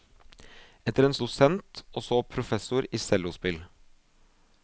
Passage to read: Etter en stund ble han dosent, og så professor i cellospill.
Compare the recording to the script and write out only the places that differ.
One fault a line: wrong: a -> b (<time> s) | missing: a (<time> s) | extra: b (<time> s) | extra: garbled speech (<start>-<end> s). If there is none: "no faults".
missing: stund ble han (1.1 s)